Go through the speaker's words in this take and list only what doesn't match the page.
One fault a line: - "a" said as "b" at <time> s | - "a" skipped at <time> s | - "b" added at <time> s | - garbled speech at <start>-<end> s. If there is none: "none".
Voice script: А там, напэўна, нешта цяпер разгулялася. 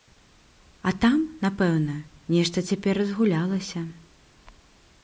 none